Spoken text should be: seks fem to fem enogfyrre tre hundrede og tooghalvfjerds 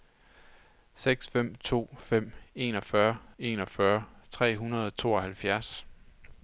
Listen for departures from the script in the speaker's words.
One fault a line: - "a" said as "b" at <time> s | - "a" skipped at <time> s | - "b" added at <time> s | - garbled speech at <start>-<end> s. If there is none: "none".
- "enogfyrre" added at 3.4 s